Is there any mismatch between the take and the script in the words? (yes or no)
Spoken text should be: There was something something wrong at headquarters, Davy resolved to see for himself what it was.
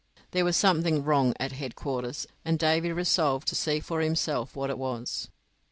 yes